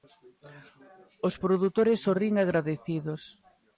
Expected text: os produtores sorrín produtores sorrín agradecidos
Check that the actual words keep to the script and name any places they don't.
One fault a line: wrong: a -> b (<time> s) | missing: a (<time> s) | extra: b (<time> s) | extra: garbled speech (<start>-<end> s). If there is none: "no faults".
missing: produtores sorrín (2.3 s)